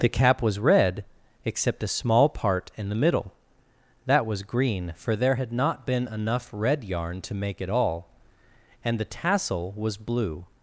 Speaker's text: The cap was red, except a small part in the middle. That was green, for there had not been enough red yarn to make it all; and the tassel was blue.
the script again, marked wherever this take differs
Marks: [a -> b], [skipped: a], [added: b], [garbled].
The cap was red, except a small part in the middle. That was green, for there had not been enough red yarn to make it all; and the tassel was blue.